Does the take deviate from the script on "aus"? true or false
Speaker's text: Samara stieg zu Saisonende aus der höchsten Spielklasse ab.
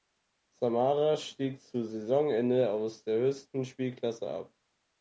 false